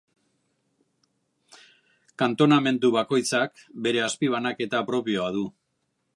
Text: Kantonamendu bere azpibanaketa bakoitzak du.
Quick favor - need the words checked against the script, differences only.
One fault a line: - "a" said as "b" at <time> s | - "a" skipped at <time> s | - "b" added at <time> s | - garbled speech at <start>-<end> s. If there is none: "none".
- "bakoitzak" added at 3.0 s
- "bakoitzak" said as "propioa" at 4.9 s